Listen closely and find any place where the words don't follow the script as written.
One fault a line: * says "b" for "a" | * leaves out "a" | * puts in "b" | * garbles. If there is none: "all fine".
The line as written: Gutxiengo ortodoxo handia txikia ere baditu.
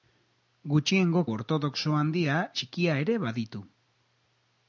all fine